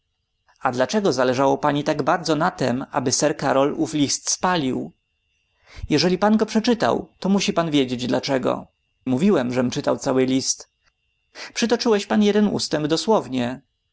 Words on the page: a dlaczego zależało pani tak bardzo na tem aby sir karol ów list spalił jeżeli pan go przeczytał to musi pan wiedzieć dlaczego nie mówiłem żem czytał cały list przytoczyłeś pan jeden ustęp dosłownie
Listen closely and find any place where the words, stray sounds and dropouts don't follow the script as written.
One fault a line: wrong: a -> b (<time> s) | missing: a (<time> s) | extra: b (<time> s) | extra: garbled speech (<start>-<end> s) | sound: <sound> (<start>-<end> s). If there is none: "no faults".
missing: nie (8.7 s)